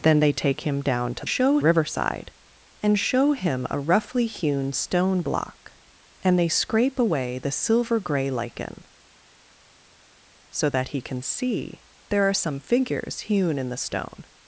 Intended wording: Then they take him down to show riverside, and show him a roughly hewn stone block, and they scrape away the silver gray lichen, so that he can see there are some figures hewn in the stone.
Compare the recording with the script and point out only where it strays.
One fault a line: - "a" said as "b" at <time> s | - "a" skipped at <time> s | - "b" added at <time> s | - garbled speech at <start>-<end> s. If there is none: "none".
none